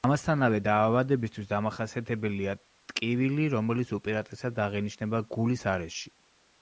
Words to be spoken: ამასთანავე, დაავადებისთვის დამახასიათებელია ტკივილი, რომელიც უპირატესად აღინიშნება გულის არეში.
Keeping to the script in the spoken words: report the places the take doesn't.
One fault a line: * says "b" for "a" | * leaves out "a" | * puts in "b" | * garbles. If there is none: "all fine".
all fine